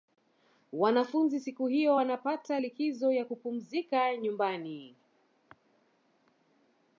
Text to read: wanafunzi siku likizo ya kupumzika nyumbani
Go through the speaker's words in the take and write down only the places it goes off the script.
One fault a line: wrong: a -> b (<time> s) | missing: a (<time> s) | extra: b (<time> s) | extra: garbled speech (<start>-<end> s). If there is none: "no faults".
extra: hiyo wanapata (1.7 s)